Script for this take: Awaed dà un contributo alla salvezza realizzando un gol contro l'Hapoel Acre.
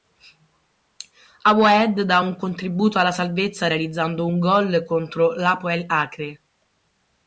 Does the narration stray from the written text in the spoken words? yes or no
no